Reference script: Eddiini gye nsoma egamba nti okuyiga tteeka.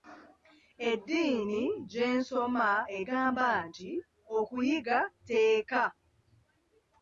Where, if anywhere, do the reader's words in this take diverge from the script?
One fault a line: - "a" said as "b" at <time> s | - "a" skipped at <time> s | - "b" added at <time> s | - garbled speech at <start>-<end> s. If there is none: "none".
none